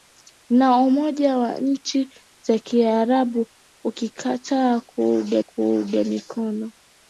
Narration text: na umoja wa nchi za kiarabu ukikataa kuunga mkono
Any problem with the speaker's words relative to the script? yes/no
yes